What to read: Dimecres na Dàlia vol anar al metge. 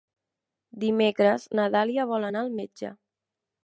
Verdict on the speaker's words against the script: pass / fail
pass